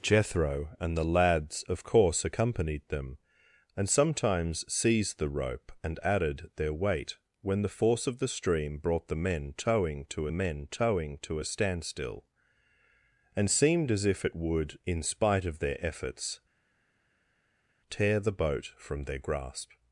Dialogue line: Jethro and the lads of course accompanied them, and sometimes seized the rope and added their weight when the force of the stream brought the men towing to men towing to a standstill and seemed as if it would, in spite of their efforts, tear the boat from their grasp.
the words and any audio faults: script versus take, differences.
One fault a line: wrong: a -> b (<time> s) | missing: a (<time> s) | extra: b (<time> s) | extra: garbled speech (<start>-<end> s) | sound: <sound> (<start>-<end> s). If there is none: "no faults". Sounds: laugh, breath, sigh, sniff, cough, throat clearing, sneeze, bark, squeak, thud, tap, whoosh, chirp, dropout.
no faults